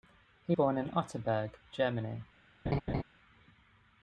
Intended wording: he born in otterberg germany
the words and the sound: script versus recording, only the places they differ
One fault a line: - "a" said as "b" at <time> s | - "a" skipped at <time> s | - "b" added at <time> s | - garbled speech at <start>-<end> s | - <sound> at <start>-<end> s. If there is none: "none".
- laugh at 2.7-3.0 s